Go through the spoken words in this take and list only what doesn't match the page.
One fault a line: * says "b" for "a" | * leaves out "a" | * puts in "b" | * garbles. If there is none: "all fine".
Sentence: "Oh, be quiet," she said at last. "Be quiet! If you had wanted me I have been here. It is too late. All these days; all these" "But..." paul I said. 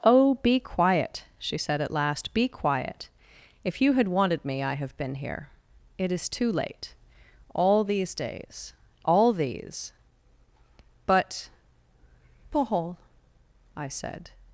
all fine